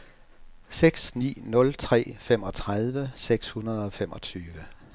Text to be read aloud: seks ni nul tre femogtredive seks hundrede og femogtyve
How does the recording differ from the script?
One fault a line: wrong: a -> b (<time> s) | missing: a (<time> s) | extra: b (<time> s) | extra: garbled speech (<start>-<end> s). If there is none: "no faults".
no faults